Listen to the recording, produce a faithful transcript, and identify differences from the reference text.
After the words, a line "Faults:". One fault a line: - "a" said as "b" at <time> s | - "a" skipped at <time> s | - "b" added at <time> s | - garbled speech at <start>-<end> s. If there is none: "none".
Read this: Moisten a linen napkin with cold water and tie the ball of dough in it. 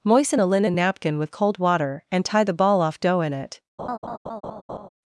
Moisten a linen napkin with cold water and tie the ball off dough in it.
Faults:
- "of" said as "off" at 2.8 s